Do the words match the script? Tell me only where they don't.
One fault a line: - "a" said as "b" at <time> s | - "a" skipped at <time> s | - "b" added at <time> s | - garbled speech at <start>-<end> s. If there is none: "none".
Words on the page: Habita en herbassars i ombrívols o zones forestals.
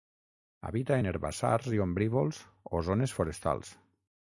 none